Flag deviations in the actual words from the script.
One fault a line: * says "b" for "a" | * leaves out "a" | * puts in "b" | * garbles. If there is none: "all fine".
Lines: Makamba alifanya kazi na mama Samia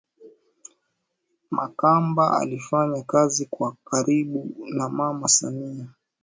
* puts in "kwa karibu"